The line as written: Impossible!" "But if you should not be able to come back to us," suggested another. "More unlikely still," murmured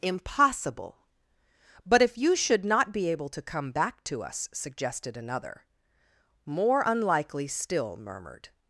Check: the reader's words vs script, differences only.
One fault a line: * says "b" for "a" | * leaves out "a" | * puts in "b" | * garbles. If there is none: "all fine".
all fine